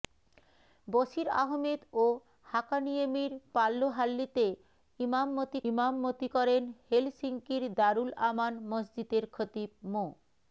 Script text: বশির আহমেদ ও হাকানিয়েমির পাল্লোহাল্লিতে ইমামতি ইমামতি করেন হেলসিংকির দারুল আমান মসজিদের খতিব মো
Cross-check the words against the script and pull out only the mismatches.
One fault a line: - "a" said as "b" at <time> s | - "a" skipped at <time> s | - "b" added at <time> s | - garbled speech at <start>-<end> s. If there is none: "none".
none